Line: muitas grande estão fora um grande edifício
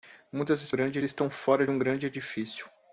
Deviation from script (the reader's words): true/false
false